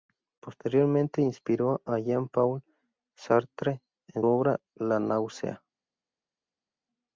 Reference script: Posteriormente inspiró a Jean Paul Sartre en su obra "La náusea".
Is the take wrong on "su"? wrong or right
wrong